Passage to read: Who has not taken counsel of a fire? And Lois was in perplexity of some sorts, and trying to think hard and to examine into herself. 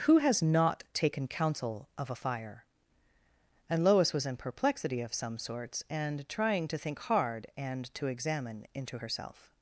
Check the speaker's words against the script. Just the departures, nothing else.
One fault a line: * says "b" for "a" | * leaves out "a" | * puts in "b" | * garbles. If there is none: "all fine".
all fine